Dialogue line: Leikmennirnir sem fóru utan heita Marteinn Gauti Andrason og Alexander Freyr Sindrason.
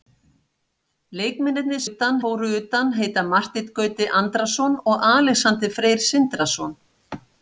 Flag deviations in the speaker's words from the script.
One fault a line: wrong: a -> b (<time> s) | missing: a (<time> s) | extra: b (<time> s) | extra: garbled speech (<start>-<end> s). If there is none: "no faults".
wrong: sem -> utan (1.9 s)